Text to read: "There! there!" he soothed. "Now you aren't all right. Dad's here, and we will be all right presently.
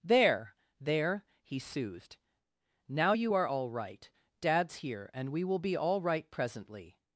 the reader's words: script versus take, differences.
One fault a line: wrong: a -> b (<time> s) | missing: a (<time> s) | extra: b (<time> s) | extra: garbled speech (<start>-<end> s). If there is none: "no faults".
wrong: aren't -> are (3.3 s)